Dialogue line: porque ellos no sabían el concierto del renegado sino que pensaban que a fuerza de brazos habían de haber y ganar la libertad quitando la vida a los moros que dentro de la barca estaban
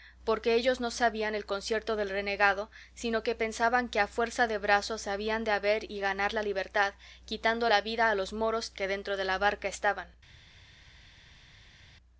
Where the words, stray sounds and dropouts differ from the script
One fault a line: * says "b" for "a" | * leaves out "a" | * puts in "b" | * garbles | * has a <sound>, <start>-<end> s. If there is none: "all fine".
all fine